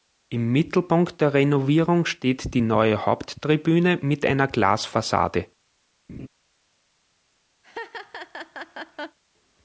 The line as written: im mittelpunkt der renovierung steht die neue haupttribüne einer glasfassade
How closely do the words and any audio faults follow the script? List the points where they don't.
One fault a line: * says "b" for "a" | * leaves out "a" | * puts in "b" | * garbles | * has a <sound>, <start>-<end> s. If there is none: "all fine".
* puts in "mit"
* has a laugh, 6.1-6.3 s
* has a laugh, 7.6-9.2 s